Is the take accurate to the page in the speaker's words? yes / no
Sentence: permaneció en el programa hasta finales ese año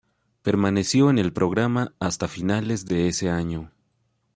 no